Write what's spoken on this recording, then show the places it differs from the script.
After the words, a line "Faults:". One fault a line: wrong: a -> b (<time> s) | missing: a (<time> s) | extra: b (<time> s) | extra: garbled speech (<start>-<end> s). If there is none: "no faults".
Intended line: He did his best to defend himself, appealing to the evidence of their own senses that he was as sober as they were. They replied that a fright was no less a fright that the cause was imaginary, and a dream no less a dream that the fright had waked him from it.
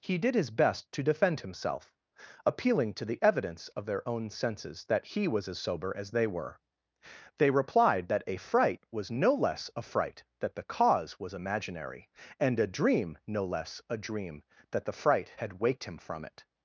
He did his best to defend himself, appealing to the evidence of their own senses that he was as sober as they were. They replied that a fright was no less a fright that the cause was imaginary, and a dream no less a dream that the fright had waked him from it.
Faults:
no faults